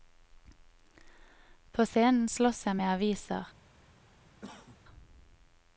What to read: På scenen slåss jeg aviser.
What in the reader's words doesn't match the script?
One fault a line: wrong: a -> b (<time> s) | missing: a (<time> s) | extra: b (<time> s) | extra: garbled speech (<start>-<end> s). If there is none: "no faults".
extra: med (2.7 s)